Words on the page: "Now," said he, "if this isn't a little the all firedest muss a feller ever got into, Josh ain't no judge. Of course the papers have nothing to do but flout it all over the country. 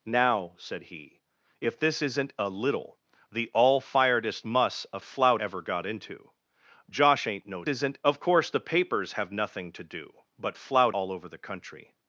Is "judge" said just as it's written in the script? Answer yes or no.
no